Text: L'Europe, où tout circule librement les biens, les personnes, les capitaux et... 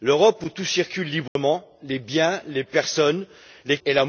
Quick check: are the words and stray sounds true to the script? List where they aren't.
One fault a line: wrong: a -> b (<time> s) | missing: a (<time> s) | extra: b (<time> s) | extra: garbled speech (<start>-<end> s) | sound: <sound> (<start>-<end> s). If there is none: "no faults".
sound: dropout (1.3-1.4 s)
missing: capitaux (3.8 s)